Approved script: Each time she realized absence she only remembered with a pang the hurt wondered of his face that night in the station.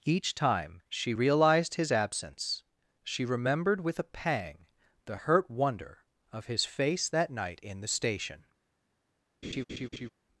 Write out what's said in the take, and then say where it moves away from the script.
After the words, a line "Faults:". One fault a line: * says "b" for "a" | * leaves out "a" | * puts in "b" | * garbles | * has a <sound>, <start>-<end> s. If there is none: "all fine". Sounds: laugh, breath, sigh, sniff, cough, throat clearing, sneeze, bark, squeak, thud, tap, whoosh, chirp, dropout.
Each time she realized his absence she remembered with a pang the hurt wonder of his face that night in the station.
Faults:
* puts in "his"
* leaves out "only"
* says "wonder" for "wondered"
* has a laugh, 9.4-10.1 s